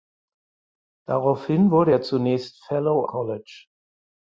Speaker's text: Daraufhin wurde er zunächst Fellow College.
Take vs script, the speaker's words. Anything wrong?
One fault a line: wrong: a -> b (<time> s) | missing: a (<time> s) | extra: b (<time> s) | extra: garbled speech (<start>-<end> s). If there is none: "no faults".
no faults